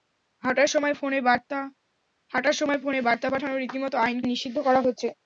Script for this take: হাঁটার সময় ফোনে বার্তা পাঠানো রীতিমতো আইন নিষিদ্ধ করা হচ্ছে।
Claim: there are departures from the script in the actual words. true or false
false